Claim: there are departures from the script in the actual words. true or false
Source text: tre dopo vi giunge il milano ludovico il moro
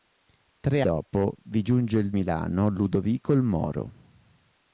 false